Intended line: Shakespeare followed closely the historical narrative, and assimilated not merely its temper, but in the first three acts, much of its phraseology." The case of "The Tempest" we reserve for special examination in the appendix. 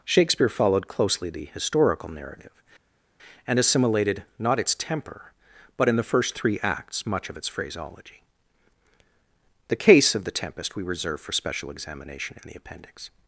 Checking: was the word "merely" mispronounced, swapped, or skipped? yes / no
yes